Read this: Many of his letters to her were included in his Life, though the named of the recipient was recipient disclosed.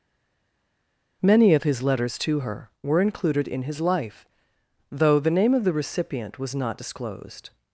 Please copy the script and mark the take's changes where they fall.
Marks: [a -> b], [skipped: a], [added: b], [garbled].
Many of his letters to her were included in his Life, though the [named -> name] of the recipient was [recipient -> not] disclosed.